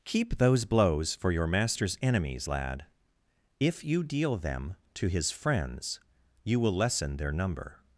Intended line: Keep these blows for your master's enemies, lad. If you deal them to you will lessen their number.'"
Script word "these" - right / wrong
wrong